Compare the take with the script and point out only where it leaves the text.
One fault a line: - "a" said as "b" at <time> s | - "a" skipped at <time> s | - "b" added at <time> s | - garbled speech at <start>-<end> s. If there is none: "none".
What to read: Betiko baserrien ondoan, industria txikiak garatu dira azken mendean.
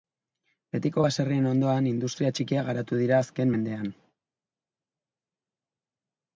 none